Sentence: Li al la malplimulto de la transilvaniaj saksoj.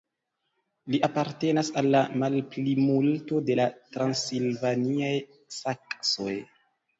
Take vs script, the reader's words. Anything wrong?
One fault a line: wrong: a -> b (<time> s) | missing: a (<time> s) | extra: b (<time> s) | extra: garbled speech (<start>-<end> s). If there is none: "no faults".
extra: apartenas (1.1 s)